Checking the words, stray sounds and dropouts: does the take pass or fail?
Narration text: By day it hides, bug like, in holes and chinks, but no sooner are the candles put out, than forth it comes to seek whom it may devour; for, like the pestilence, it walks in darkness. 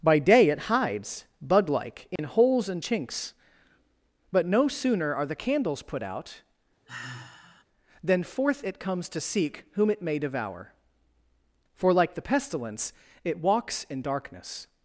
fail